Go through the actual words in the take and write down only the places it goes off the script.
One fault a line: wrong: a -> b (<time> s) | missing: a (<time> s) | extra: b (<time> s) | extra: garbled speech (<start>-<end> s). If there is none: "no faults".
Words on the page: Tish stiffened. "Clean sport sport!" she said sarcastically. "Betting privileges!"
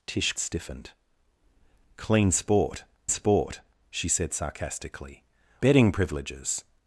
no faults